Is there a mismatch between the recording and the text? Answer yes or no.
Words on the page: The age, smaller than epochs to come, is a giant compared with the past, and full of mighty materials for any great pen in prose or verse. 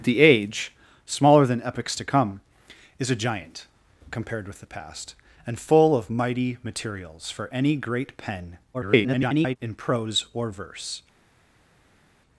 yes